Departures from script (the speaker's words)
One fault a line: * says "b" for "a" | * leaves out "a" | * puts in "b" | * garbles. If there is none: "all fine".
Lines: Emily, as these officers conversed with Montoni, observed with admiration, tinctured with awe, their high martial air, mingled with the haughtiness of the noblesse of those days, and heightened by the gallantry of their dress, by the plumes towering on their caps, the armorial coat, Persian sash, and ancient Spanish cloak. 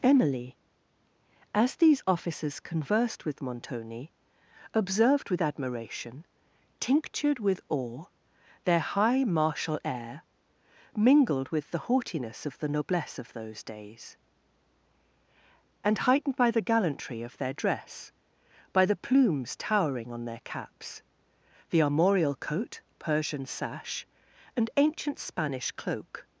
all fine